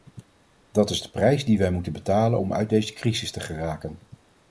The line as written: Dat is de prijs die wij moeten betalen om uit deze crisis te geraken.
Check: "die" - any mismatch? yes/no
no